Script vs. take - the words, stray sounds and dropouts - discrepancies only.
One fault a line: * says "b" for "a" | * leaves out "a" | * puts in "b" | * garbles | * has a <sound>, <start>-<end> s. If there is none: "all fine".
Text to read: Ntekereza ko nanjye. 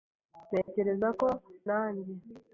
* has a dropout, 0.6-0.7 s